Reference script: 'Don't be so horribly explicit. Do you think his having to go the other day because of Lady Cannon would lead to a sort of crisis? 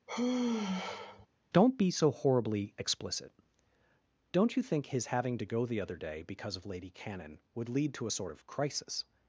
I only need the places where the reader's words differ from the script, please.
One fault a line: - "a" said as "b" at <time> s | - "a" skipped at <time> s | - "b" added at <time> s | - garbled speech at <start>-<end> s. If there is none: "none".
- "Do" said as "Don't" at 4.3 s